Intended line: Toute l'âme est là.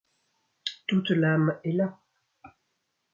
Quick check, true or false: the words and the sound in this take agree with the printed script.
true